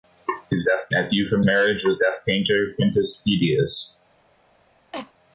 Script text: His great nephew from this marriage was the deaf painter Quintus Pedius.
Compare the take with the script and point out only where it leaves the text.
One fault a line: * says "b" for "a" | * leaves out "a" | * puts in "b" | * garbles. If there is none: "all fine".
* says "deaf" for "great"
* leaves out "this"
* leaves out "the"